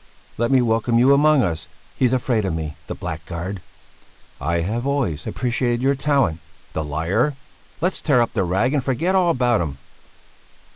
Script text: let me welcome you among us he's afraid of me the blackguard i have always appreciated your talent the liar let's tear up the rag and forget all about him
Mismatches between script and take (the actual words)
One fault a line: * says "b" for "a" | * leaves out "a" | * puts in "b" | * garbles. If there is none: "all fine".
all fine